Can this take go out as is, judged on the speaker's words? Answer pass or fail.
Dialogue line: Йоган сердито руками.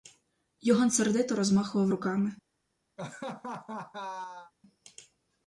fail